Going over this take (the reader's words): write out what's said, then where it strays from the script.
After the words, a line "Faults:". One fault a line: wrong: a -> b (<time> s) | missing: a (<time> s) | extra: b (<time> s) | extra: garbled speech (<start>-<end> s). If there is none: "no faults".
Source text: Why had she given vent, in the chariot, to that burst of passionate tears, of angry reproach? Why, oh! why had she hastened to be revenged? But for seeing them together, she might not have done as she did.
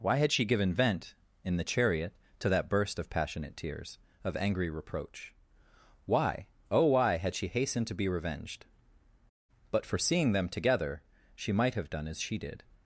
Why had she given vent, in the chariot, to that burst of passionate tears, of angry reproach? Why, oh! why had she hastened to be revenged? But for seeing them together, she might have done as she did.
Faults:
missing: not (11.8 s)